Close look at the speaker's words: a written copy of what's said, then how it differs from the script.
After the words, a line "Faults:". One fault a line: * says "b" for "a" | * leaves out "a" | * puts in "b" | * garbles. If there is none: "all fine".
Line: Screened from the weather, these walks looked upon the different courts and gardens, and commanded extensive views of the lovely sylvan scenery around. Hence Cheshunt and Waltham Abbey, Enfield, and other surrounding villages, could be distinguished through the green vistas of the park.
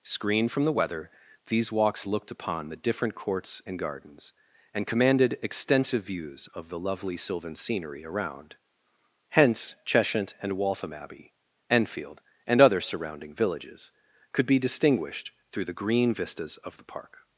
Screened from the weather, these walks looked upon the different courts and gardens, and commanded extensive views of the lovely sylvan scenery around. Hence Cheshunt and Waltham Abbey, Enfield, and other surrounding villages, could be distinguished through the green vistas of the park.
Faults:
all fine